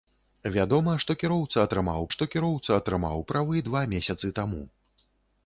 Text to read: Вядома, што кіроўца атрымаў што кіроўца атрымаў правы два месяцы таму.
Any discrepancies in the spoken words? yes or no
no